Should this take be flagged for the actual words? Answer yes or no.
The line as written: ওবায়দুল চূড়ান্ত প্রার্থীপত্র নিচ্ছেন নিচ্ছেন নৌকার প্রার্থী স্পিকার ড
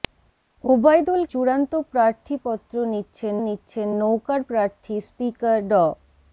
no